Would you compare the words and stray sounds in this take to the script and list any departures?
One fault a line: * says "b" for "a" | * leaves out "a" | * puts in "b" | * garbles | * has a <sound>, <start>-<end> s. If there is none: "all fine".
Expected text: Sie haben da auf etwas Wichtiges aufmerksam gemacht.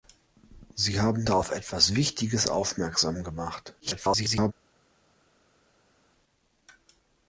* garbles